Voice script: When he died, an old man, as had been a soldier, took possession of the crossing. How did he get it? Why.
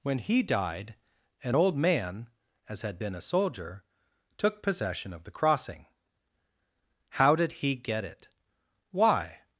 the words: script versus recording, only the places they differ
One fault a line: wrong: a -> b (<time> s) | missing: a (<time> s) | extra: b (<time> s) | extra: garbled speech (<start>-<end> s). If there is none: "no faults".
no faults